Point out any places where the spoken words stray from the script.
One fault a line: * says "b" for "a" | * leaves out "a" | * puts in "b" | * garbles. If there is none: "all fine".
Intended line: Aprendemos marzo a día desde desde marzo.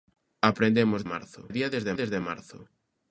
all fine